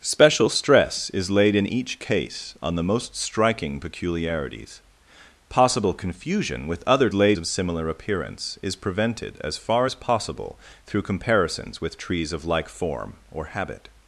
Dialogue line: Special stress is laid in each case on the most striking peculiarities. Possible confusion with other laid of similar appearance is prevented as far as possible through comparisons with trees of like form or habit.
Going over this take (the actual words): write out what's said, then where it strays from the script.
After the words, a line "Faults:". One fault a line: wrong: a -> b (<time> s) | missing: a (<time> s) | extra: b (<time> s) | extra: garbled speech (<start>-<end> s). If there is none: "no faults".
Special stress is laid in each case on the most striking peculiarities. Possible confusion with other laid of similar appearance is prevented as far as possible through comparisons with trees of like form or habit.
Faults:
no faults